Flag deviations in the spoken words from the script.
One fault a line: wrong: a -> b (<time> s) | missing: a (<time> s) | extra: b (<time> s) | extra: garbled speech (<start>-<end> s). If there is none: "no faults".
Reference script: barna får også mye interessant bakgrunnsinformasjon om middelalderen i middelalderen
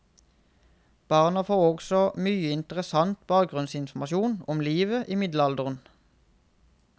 wrong: middelalderen -> livet (4.6 s)